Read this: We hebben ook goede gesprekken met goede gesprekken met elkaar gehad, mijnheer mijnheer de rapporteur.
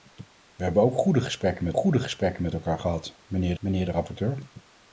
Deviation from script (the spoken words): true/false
false